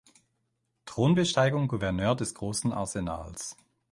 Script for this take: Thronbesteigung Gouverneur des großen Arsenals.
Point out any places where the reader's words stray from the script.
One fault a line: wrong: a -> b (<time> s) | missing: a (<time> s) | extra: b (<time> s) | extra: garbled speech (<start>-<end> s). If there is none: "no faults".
no faults